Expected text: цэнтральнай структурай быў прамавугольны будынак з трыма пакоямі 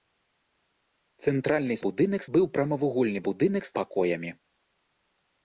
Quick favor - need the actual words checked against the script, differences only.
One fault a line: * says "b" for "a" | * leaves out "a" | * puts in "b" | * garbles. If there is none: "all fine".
* says "будынак" for "структурай"
* leaves out "трыма"